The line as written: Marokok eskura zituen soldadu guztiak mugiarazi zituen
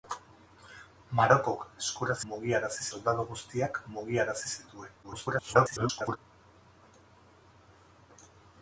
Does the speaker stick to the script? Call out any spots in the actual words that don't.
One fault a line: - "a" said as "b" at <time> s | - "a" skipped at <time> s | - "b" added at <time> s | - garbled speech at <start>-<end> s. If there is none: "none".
- "zituen" said as "mugiarazi" at 2.3 s
- garbled speech at 5.0-6.2 s